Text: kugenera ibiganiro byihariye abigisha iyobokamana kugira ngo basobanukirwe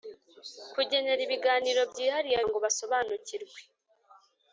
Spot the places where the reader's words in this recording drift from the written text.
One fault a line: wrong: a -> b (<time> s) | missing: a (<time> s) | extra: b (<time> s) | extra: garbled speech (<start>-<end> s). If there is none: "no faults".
missing: abigisha iyobokamana kugira (2.4 s)